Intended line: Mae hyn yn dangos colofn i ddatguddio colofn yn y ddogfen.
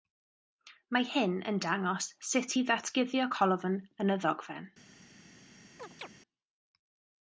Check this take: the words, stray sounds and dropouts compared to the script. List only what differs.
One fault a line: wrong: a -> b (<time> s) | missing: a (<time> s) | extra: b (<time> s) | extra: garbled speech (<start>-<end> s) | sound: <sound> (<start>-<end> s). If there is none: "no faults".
wrong: colofn -> sut (2.3 s)
sound: chirp (5.8-6.1 s)